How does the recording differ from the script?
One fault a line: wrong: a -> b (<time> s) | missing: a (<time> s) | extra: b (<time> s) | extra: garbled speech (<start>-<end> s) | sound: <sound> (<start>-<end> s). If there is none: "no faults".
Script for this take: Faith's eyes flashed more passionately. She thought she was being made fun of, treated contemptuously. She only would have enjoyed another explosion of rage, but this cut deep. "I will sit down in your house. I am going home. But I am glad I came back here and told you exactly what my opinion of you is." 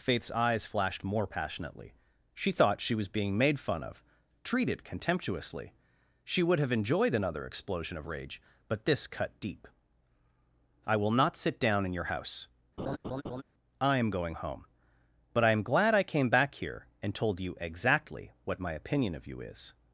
missing: only (6.4 s)
extra: not (11.1 s)
sound: laugh (12.8-13.4 s)